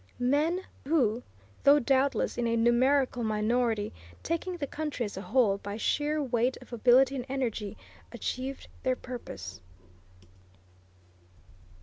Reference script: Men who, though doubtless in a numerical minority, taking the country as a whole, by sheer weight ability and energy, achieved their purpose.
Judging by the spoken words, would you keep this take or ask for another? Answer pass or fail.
fail